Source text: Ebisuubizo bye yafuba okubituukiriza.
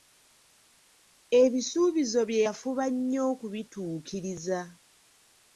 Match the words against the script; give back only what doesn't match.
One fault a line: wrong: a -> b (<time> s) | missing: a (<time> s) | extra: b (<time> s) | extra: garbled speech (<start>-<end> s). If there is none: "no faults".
extra: nnyo (2.9 s)